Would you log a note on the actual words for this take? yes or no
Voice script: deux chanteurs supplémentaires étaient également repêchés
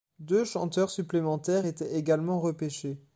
no